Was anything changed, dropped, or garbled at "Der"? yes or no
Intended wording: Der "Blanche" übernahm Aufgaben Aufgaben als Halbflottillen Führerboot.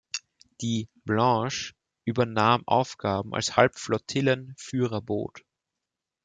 yes